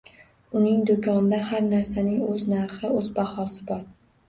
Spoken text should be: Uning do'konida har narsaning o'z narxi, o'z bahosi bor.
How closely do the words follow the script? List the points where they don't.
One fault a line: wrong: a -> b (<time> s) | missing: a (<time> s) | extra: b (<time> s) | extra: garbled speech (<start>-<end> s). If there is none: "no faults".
no faults